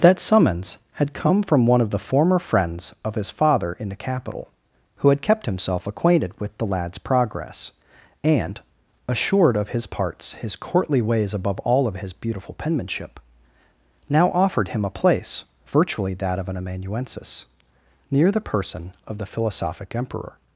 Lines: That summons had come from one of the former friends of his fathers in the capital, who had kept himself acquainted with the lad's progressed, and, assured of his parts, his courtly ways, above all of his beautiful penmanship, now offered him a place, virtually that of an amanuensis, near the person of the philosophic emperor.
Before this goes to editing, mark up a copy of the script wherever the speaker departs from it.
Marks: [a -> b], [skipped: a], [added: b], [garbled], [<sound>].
That summons had come from one of the former friends of his [fathers -> father] in the capital, who had kept himself acquainted with the lad's [progressed, -> progress] and, assured of his parts, his courtly ways, above all of his beautiful penmanship, now offered him a place, virtually that of an amanuensis, near the person of the philosophic emperor.